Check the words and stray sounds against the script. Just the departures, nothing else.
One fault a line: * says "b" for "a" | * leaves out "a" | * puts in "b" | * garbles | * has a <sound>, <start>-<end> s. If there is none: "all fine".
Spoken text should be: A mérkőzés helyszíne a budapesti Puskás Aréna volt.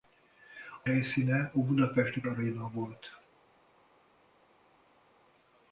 * leaves out "mérkőzés"
* leaves out "Puskás"